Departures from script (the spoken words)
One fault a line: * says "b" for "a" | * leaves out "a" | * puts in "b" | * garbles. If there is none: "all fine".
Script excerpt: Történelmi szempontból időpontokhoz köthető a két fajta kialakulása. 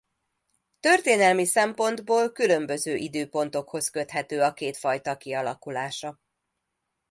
* puts in "különböző"